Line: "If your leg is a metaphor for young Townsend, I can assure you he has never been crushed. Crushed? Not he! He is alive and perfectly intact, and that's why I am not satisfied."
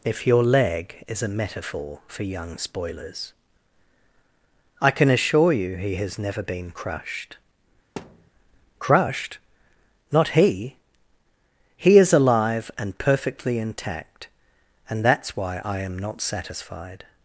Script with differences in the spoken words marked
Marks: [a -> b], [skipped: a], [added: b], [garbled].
"If your leg is a metaphor for young [Townsend, -> Spoilers] I can assure you he has never been crushed. Crushed? Not he! He is alive and perfectly intact, and that's why I am not satisfied."